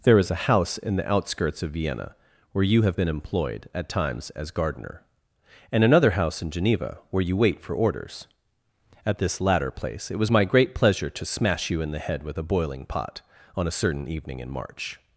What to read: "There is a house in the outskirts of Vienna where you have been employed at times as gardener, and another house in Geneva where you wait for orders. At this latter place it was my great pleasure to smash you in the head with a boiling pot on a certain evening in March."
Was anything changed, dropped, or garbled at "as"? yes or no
no